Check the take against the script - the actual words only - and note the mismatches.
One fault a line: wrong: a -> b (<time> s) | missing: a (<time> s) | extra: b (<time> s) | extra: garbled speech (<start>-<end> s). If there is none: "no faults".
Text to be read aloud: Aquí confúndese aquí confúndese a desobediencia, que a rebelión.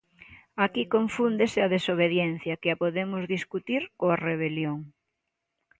missing: aquí confúndese (1.6 s)
extra: podemos discutir coa (2.8 s)